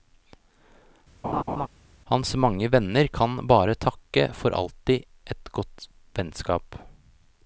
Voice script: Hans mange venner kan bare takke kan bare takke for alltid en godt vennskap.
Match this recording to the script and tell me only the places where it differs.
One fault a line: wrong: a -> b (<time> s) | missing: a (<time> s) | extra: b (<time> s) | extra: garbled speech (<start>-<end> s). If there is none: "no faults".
missing: kan bare takke (4.3 s)
wrong: en -> et (5.4 s)